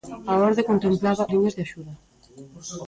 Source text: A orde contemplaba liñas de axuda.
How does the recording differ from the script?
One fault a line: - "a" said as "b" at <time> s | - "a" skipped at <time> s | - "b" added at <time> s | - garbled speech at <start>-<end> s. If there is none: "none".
none